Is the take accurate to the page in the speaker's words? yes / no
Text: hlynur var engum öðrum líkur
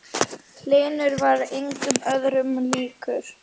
yes